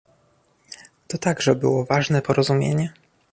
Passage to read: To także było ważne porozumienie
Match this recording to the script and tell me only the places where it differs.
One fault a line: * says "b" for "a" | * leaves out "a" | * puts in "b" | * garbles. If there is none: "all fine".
all fine